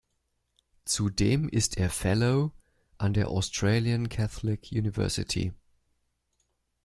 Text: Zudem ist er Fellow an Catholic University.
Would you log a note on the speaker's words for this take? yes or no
yes